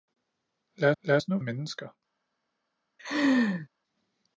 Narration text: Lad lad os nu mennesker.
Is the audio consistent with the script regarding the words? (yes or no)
yes